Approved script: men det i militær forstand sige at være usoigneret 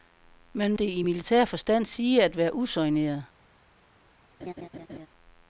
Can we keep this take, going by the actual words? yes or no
yes